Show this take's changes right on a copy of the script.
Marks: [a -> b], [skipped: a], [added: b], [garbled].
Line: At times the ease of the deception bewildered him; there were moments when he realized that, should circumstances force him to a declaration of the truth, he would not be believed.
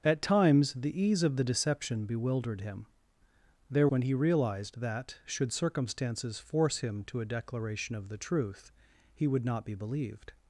At times the ease of the deception bewildered him; there [skipped: were moments] when he realized that, should circumstances force him to a declaration of the truth, he would not be believed.